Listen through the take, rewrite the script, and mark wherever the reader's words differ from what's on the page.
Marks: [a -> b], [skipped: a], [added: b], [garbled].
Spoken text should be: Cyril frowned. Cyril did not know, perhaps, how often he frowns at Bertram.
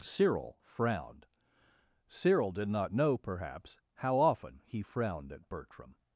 Cyril frowned. Cyril did not know, perhaps, how often he [frowns -> frowned] at Bertram.